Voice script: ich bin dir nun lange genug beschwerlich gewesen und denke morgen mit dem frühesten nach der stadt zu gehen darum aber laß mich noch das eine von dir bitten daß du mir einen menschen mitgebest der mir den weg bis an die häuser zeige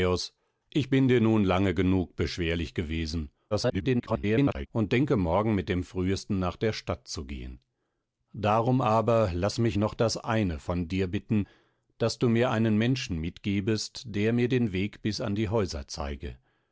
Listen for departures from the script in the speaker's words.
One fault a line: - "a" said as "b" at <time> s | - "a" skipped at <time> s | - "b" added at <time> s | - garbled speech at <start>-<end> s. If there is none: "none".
- garbled speech at 3.5-4.7 s